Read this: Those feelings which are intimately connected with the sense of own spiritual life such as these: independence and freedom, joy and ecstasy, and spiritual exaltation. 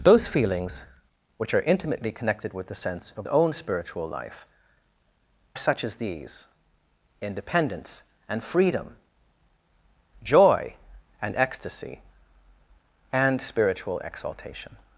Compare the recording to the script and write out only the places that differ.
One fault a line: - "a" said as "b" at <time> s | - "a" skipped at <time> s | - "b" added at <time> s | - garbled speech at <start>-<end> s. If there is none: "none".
none